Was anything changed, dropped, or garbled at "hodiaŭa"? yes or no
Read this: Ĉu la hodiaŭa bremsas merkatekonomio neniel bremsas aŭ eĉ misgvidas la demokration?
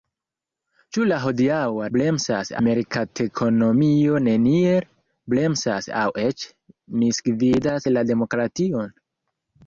no